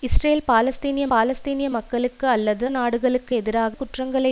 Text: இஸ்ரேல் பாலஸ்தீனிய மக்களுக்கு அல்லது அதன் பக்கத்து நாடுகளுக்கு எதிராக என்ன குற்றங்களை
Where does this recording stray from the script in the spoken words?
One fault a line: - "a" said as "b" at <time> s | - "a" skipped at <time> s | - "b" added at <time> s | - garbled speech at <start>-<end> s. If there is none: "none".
- "பாலஸ்தீனிய" added at 1.1 s
- "அதன் பக்கத்து" skipped at 2.6 s
- "என்ன" skipped at 3.7 s